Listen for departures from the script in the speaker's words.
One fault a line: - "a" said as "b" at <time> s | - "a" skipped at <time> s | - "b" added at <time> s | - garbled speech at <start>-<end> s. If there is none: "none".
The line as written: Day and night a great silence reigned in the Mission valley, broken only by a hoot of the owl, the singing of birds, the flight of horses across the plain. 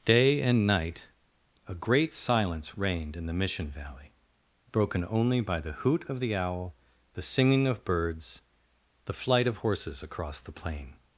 - "a" said as "the" at 5.6 s